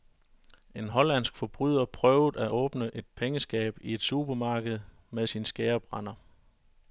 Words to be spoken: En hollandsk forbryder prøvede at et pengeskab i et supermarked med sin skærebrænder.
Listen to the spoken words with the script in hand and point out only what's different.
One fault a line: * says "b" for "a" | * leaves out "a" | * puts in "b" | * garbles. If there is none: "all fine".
* puts in "åbne"